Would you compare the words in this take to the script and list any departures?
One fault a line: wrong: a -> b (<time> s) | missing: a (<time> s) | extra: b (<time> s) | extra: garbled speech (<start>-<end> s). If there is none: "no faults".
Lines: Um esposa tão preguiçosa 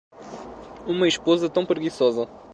wrong: Um -> Uma (0.9 s)